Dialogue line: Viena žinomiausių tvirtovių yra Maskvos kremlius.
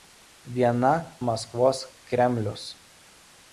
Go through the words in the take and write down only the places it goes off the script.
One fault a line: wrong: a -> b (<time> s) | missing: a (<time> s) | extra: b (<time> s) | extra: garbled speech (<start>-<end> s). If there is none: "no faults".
missing: žinomiausių tvirtovių yra (0.9 s)